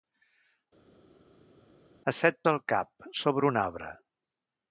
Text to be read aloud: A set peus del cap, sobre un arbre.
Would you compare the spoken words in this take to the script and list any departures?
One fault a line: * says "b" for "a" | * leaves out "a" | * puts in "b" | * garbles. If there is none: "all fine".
* leaves out "peus"